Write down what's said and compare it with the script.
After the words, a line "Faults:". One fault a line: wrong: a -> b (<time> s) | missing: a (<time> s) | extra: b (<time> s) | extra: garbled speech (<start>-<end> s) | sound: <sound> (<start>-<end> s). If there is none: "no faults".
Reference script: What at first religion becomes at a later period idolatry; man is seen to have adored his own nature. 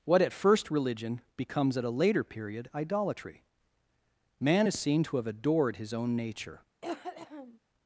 What at first religion becomes at a later period idolatry; man is seen to have adored his own nature.
Faults:
sound: cough (6.8-7.6 s)